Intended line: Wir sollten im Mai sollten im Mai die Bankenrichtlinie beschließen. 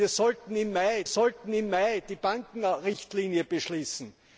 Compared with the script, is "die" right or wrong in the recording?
right